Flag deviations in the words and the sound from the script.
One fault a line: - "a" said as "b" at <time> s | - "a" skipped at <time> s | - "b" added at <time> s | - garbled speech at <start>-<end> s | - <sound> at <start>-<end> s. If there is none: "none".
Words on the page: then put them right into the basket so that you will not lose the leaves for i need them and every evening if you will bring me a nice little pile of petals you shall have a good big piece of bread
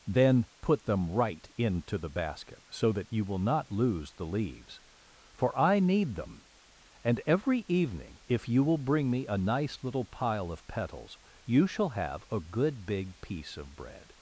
none